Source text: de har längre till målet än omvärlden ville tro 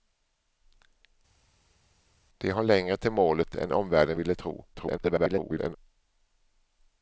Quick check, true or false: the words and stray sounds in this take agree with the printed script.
false